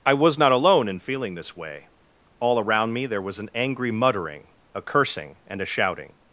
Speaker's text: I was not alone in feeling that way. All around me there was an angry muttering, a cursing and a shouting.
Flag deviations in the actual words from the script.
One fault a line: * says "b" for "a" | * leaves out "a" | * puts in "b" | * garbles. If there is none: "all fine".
* says "this" for "that"